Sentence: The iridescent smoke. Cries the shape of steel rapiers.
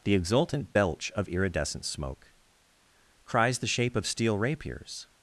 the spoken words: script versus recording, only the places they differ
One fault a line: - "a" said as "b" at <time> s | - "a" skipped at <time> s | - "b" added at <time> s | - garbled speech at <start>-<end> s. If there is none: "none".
- "exultant belch of" added at 0.1 s